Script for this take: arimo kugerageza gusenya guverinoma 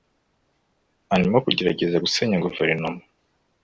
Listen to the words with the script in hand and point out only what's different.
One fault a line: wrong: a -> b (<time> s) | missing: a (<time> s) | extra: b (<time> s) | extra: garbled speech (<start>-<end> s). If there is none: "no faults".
no faults